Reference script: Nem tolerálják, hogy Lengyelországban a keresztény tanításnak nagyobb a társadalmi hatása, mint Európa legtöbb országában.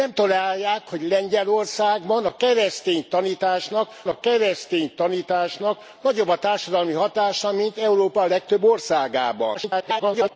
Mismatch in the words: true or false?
true